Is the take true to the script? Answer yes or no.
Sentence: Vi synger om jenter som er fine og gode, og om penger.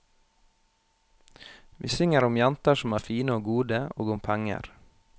yes